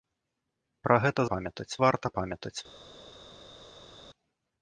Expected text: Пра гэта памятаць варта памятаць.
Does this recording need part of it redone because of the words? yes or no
no